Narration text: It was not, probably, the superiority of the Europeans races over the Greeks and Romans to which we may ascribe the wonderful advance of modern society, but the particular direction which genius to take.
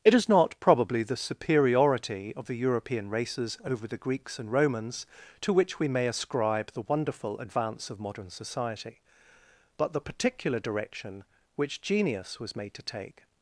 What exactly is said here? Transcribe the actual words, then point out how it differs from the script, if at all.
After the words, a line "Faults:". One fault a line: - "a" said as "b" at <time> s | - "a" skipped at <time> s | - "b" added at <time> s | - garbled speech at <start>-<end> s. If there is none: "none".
It is not, probably, the superiority of the European races over the Greeks and Romans to which we may ascribe the wonderful advance of modern society, but the particular direction which genius was made to take.
Faults:
- "was" said as "is" at 0.1 s
- "Europeans" said as "European" at 2.6 s
- "was made" added at 12.4 s